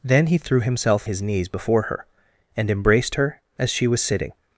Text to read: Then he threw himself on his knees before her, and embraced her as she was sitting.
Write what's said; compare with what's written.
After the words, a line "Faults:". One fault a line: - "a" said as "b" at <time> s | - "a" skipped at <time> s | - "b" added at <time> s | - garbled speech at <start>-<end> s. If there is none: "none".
Then he threw himself his knees before her, and embraced her as she was sitting.
Faults:
- "on" skipped at 1.1 s